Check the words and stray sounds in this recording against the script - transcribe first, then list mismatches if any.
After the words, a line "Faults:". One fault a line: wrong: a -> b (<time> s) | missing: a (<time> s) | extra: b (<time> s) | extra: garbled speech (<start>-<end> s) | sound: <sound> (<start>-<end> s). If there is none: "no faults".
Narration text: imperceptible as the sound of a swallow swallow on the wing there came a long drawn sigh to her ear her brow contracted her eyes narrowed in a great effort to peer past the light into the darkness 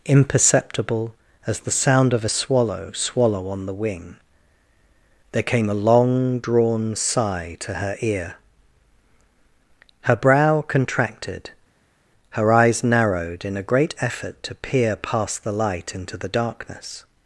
imperceptible as the sound of a swallow swallow on the wing there came a long drawn sigh to her ear her brow contracted her eyes narrowed in a great effort to peer past the light into the darkness
Faults:
no faults